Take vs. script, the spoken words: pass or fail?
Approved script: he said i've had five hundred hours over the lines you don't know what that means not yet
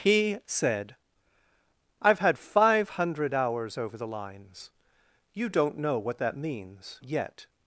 fail